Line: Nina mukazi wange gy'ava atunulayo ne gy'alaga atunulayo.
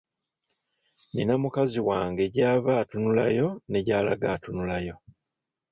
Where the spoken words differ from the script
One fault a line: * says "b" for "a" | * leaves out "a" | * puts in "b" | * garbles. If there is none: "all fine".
all fine